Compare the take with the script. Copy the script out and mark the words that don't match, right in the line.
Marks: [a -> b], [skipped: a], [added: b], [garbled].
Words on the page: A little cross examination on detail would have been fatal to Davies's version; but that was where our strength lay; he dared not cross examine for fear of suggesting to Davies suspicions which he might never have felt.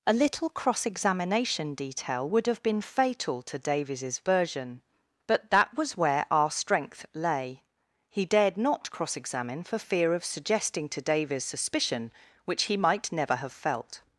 A little cross examination [skipped: on] detail would have been fatal to Davies's version; but that was where our strength lay; he dared not cross examine for fear of suggesting to Davies [suspicions -> suspicion] which he might never have felt.